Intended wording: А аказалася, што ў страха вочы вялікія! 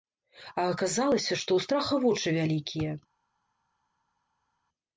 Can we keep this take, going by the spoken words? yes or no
yes